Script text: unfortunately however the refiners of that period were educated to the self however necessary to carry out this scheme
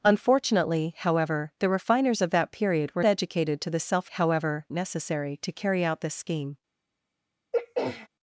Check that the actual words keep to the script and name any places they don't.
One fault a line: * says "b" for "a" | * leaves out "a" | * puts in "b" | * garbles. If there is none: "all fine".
all fine